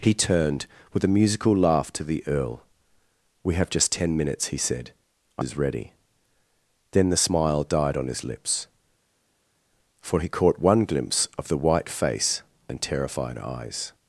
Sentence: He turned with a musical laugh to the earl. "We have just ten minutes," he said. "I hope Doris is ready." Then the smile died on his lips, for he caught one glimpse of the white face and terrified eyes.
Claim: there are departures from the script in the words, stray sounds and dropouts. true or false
true